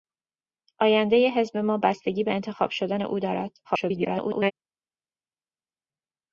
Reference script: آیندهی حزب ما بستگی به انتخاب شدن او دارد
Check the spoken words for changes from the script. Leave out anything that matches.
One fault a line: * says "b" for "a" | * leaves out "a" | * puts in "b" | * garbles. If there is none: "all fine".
* garbles